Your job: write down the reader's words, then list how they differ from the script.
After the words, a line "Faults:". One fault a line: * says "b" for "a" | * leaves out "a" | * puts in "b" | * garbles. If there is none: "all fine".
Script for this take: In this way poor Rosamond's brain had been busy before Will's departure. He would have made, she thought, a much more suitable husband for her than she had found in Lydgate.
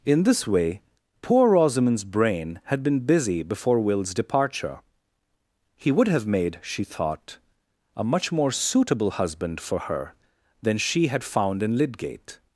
In this way poor Rosamond's brain had been busy before Will's departure. He would have made, she thought, a much more suitable husband for her than she had found in Lydgate.
Faults:
all fine